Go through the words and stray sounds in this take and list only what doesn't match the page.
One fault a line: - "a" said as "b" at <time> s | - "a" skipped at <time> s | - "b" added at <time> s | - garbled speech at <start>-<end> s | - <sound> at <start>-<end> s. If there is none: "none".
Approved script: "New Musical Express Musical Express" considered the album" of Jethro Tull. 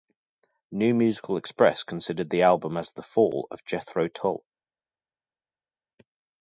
- "Musical Express considered" said as "considered the album as" at 1.8 s
- "album" said as "fall" at 3.0 s